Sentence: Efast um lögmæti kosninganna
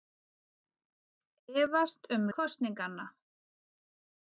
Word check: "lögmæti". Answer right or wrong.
wrong